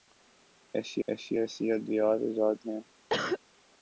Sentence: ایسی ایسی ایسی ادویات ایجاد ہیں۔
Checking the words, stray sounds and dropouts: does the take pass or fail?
fail